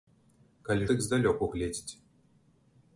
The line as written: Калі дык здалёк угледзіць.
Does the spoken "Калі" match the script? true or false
true